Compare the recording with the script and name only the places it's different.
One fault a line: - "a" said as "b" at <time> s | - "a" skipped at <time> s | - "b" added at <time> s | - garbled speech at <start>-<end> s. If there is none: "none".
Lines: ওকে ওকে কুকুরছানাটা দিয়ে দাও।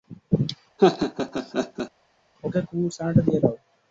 - "ওকে" skipped at 2.6 s